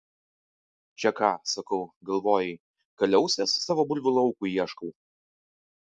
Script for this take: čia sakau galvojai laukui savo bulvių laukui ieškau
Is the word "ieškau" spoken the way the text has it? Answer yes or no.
yes